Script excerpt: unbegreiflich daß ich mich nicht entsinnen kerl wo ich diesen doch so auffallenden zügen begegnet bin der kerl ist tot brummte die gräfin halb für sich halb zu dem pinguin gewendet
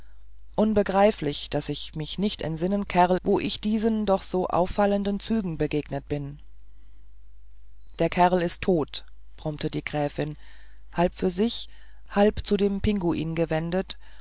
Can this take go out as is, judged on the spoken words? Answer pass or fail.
pass